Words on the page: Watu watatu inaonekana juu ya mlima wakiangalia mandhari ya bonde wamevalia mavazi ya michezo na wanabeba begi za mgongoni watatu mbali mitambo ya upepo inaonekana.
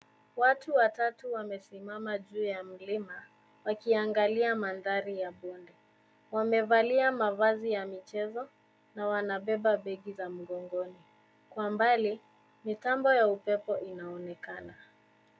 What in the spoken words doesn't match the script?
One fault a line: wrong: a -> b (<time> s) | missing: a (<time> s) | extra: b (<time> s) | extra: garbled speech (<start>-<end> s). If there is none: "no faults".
wrong: inaonekana -> wamesimama (1.3 s)
wrong: watatu -> kwa (11.5 s)